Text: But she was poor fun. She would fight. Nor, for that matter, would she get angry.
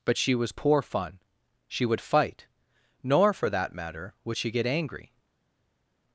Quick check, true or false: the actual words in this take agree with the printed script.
true